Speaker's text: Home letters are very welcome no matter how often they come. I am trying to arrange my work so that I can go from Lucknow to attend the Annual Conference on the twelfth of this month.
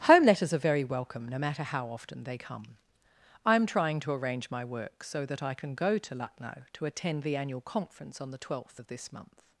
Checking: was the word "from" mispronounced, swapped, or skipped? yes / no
yes